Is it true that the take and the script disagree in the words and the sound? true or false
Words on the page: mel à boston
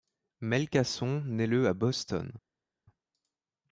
true